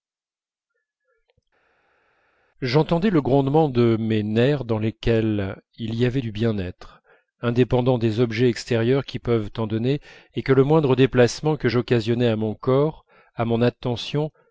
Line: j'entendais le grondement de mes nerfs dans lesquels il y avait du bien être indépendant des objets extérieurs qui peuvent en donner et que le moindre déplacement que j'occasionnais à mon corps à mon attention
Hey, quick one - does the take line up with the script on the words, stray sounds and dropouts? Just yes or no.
yes